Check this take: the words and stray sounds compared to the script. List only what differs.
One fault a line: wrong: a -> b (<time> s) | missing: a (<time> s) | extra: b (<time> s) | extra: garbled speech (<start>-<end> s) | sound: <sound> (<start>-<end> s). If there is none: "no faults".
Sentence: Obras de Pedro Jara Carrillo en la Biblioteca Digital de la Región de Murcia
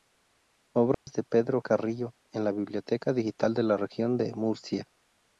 sound: dropout (0.9-1.1 s)
missing: Jara (1.6 s)